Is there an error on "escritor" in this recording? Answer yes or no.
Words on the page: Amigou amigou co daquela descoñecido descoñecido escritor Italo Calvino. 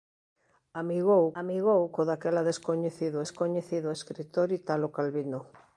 no